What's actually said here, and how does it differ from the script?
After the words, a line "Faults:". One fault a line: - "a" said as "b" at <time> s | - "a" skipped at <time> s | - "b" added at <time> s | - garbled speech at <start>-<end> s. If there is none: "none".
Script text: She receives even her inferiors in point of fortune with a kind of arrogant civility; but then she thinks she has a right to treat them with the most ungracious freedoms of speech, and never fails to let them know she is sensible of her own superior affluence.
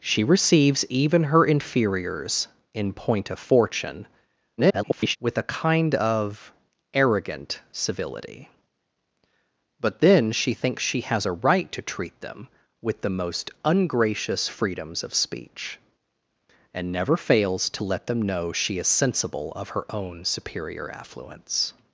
She receives even her inferiors in point of fortune [garbled] with a kind of arrogant civility; but then she thinks she has a right to treat them with the most ungracious freedoms of speech, and never fails to let them know she is sensible of her own superior affluence.
Faults:
- garbled speech at 4.6-5.2 s